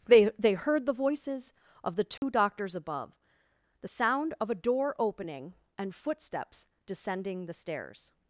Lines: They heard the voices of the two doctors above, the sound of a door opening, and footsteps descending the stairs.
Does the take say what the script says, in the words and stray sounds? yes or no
no